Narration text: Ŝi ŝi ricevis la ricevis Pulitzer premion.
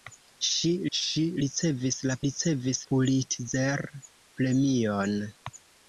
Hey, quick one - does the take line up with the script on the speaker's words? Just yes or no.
yes